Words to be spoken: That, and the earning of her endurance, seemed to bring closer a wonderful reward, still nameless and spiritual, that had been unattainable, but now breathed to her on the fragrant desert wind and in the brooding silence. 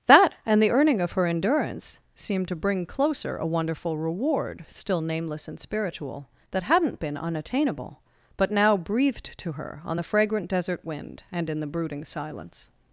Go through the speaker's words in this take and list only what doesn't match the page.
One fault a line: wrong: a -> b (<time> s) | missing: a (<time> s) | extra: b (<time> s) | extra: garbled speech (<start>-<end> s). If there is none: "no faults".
wrong: had -> hadn't (6.6 s)